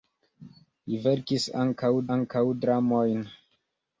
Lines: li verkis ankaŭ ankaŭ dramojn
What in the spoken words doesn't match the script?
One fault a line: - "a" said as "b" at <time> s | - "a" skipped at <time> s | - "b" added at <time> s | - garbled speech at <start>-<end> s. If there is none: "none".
none